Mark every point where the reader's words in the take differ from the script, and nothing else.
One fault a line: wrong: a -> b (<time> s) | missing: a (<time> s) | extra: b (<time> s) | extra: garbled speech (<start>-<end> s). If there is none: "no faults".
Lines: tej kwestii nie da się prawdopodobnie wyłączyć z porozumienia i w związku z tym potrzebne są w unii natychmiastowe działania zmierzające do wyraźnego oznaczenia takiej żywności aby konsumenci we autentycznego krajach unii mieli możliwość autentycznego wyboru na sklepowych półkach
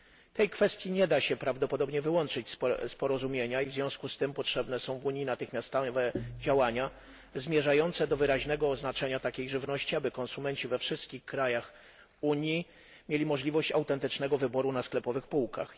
wrong: autentycznego -> wszystkich (10.8 s)